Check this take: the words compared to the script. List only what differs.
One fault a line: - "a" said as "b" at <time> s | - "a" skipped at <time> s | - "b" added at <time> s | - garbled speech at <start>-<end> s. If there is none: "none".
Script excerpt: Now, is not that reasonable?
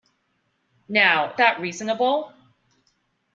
- "is not" skipped at 1.4 s